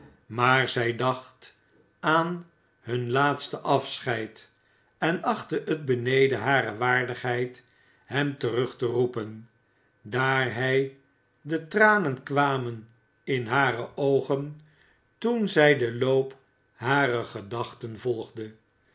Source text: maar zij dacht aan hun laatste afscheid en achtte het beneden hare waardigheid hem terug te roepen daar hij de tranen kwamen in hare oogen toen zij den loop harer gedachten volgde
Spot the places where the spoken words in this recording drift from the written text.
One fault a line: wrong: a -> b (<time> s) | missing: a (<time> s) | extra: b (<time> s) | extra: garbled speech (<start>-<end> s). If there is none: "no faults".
no faults